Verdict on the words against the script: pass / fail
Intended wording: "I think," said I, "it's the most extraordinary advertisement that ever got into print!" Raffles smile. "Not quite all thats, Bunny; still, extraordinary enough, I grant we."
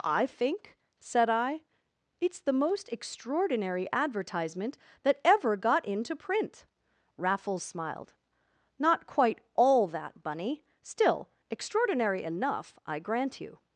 fail